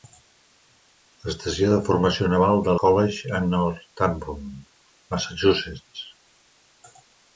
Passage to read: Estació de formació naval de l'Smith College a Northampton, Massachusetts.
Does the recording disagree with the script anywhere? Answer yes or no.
yes